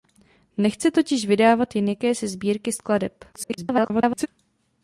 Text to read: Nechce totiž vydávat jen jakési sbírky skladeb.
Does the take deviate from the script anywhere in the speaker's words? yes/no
yes